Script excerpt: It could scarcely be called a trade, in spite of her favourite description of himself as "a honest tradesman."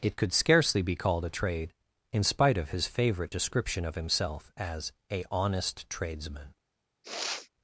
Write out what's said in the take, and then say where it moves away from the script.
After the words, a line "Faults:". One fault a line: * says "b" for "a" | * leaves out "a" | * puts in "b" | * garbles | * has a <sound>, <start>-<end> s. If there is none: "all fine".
It could scarcely be called a trade, in spite of his favourite description of himself as "a honest tradesman."
Faults:
* says "his" for "her"
* has a sniff, 7.0-7.5 s